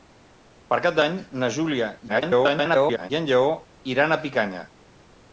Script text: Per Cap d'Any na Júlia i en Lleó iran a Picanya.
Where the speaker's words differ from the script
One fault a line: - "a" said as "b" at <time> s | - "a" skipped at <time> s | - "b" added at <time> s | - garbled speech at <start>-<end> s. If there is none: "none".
- garbled speech at 2.1-3.1 s